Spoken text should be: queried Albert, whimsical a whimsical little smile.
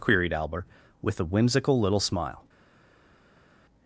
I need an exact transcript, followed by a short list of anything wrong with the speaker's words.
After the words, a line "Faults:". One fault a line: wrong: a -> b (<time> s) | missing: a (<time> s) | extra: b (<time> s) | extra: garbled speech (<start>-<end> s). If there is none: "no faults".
queried Albert, with a whimsical little smile.
Faults:
wrong: whimsical -> with (1.0 s)